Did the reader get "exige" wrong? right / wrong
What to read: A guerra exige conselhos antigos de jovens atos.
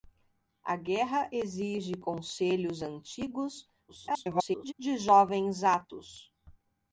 right